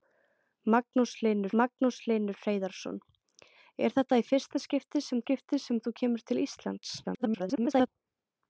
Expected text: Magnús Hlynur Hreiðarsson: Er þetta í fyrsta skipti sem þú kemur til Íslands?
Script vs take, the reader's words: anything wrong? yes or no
yes